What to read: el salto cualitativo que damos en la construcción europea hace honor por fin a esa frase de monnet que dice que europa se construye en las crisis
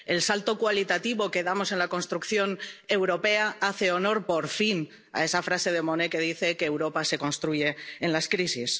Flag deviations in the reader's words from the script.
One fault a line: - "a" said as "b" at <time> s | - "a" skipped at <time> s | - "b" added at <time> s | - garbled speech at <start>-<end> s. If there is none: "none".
none